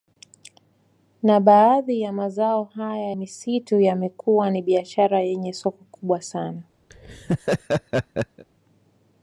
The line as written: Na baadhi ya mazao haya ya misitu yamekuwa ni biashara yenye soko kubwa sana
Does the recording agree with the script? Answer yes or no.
no